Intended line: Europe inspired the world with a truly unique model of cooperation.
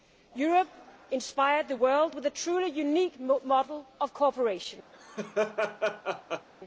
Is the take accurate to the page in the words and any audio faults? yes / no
no